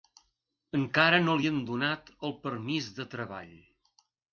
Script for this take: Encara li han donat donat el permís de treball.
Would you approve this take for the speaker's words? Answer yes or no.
no